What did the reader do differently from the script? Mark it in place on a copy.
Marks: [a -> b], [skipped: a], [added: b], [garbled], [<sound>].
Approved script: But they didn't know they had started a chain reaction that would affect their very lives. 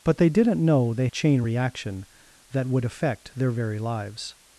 But they didn't know they [skipped: had started a] chain reaction that would affect their very lives.